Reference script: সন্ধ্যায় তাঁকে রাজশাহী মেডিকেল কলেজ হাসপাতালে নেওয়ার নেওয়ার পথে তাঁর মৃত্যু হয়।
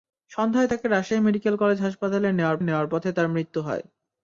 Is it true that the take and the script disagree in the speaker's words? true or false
false